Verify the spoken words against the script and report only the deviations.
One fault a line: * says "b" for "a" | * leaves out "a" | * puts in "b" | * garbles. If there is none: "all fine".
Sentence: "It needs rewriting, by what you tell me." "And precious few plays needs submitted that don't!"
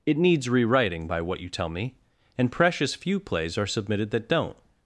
* says "are" for "needs"